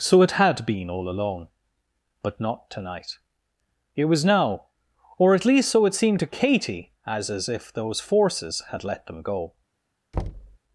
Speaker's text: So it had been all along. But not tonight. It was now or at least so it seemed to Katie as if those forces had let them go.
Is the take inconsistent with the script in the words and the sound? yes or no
yes